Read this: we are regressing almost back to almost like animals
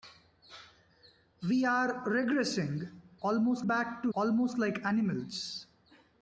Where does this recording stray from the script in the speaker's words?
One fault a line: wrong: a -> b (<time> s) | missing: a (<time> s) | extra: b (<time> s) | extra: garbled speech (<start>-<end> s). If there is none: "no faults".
no faults